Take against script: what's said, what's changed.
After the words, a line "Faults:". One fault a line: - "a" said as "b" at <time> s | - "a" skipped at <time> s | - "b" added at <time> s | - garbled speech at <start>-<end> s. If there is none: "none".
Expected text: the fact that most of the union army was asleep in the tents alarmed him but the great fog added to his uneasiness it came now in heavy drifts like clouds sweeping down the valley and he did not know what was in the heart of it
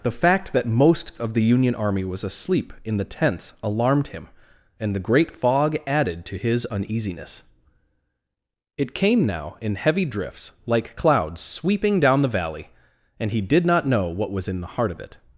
the fact that most of the union army was asleep in the tents alarmed him and the great fog added to his uneasiness it came now in heavy drifts like clouds sweeping down the valley and he did not know what was in the heart of it
Faults:
- "but" said as "and" at 4.8 s